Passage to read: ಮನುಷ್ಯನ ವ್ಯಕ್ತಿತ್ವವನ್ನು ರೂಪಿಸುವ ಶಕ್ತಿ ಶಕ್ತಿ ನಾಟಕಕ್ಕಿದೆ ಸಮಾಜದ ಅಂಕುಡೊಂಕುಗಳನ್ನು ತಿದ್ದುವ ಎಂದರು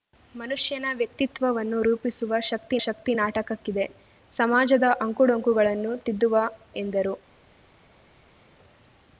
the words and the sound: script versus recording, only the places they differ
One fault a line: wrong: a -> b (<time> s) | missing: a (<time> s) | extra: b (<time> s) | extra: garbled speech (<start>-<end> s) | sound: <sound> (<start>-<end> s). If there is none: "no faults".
no faults